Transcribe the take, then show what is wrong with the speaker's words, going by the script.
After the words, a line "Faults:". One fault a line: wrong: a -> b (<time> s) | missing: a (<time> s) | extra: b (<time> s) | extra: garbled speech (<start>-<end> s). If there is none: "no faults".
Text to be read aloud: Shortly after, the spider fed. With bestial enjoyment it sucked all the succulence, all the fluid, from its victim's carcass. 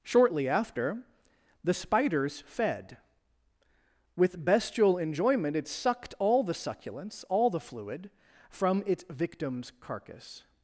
Shortly after, the spiders fed. With bestial enjoyment it sucked all the succulence, all the fluid, from its victim's carcass.
Faults:
wrong: spider -> spiders (1.7 s)